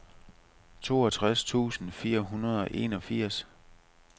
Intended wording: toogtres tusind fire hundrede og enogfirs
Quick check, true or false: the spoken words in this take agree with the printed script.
true